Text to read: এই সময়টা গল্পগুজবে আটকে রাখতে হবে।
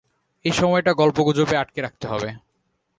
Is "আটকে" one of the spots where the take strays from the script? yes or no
no